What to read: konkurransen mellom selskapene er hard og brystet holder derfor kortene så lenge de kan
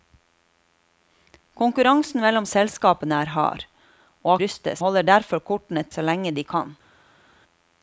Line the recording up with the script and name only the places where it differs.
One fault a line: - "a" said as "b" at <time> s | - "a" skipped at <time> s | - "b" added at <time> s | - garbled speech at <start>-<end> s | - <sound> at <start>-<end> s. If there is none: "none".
none